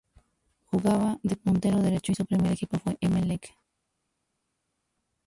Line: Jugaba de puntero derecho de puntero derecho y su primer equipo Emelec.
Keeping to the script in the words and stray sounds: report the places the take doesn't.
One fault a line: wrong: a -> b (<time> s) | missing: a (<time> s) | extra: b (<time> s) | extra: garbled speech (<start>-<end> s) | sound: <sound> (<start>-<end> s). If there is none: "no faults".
missing: de puntero derecho (2.1 s)
extra: fue (2.8 s)